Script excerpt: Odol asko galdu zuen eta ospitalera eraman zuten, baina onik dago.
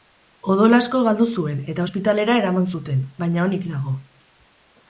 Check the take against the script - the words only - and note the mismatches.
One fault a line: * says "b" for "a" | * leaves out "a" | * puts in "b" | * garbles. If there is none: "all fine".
all fine